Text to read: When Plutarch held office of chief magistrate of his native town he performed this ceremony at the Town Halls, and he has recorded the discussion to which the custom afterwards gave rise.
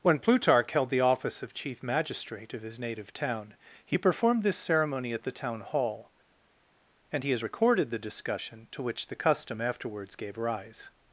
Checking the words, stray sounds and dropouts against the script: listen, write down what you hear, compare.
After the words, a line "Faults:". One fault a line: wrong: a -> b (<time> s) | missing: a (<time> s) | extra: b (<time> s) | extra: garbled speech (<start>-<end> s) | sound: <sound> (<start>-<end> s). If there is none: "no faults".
When Plutarch held the office of chief magistrate of his native town he performed this ceremony at the Town Hall, and he has recorded the discussion to which the custom afterwards gave rise.
Faults:
extra: the (0.9 s)
wrong: Halls -> Hall (5.6 s)